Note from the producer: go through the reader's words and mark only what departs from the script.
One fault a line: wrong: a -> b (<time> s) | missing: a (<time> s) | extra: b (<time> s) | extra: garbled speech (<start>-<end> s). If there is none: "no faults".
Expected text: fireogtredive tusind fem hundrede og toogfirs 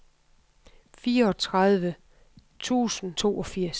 missing: fem hundrede og (3.1 s)